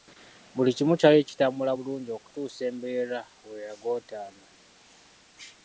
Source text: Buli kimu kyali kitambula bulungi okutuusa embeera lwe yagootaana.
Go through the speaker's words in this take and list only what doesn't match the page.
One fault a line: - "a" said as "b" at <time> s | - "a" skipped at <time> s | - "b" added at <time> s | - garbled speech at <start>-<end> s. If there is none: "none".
none